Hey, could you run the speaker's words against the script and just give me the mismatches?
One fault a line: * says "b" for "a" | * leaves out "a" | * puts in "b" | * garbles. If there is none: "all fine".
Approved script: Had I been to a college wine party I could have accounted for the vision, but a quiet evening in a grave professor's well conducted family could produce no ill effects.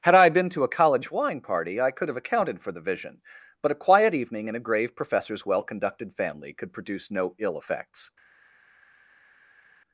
all fine